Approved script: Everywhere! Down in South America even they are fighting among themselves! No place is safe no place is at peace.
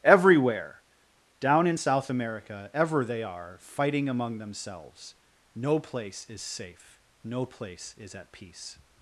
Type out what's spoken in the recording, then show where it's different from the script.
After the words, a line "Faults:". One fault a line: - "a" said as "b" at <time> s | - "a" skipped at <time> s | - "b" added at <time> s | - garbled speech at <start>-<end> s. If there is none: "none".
Everywhere! Down in South America ever they are fighting among themselves! No place is safe no place is at peace.
Faults:
- "even" said as "ever" at 2.7 s